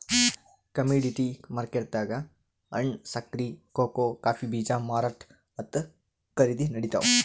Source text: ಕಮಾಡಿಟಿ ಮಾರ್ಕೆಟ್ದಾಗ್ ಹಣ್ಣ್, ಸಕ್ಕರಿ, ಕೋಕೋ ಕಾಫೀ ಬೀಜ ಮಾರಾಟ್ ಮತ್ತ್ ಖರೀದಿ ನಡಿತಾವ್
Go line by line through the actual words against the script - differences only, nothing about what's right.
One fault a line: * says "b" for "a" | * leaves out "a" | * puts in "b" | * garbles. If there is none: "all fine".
all fine